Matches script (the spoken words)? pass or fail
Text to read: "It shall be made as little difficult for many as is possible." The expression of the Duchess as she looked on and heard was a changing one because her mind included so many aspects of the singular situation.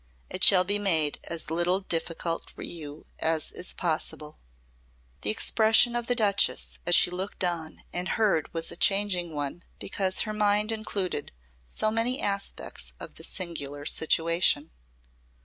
fail